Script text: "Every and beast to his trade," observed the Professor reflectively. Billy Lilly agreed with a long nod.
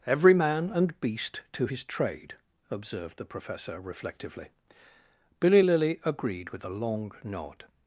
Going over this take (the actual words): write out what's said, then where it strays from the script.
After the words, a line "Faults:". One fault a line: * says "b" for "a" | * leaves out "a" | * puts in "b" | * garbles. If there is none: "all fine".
"Every man and beast to his trade," observed the Professor reflectively. Billy Lilly agreed with a long nod.
Faults:
* puts in "man"